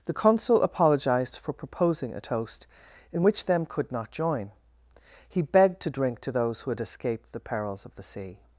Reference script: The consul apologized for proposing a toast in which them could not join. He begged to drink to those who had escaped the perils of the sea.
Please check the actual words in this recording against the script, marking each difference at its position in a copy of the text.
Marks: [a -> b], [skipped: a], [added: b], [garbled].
The consul apologized for proposing a toast in which them could not join. He begged to drink to those who had escaped the perils of the sea.